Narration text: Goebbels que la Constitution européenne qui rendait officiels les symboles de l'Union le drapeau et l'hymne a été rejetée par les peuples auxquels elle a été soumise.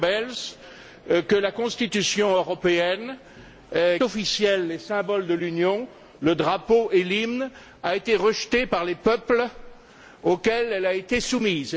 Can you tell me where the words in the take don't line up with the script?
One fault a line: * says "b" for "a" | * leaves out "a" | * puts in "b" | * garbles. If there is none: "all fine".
* leaves out "qui rendait"